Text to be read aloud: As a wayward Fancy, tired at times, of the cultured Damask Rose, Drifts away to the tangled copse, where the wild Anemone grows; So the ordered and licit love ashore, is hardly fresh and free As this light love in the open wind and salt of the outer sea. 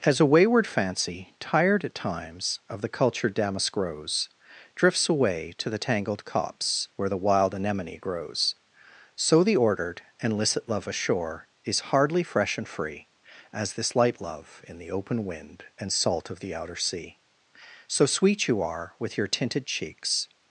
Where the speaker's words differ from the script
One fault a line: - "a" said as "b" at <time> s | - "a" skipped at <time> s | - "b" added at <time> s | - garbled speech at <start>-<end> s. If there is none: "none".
- "So sweet you are with your tinted cheeks" added at 17.9 s